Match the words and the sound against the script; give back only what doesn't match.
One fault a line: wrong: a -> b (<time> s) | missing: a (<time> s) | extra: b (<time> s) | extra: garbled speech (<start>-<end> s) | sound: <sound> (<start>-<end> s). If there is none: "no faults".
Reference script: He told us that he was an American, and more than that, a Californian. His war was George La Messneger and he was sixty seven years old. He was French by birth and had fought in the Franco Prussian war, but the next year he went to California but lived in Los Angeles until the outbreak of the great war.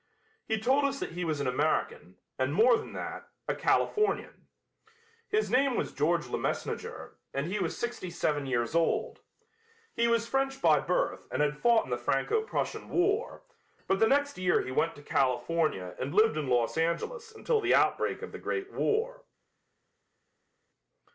wrong: war -> name (5.5 s)
wrong: but -> and (16.0 s)